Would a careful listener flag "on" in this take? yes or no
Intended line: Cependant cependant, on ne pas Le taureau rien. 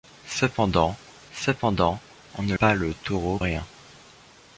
no